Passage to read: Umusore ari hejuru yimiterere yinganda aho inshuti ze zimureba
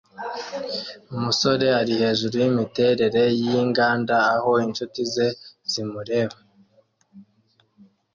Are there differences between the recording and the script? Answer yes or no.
no